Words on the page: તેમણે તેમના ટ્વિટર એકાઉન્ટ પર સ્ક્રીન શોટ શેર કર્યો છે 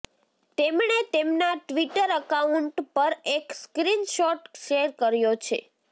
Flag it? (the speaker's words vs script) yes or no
yes